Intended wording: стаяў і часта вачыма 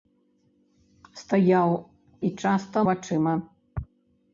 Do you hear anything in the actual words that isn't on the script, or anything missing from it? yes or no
no